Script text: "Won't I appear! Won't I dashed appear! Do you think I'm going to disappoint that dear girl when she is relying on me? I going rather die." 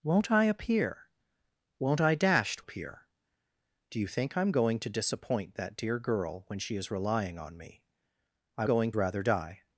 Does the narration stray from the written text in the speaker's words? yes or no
no